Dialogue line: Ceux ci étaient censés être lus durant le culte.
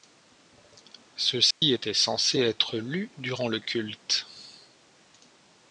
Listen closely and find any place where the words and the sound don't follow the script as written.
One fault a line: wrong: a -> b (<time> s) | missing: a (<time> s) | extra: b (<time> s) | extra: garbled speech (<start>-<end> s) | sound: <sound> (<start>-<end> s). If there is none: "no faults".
sound: dropout (1.5-1.6 s)